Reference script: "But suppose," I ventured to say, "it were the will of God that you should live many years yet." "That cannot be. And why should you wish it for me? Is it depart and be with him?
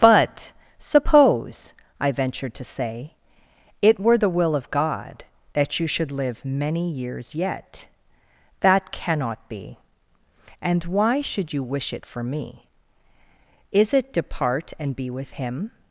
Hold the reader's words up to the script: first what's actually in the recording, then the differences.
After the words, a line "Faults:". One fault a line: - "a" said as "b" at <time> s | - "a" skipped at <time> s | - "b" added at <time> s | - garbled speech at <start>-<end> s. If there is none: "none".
"But suppose," I ventured to say, "it were the will of God that you should live many years yet." "That cannot be. And why should you wish it for me? Is it depart and be with him?
Faults:
none